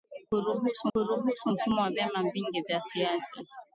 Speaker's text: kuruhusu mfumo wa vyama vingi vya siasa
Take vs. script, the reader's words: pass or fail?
fail